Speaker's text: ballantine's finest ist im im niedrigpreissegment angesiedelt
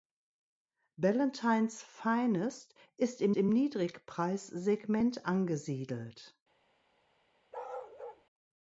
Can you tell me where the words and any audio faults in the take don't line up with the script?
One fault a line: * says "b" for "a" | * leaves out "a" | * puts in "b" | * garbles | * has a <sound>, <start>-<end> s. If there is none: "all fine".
* has a bark, 7.5-8.2 s